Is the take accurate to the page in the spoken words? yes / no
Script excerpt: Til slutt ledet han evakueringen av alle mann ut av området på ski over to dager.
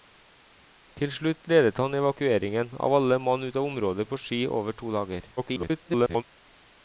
no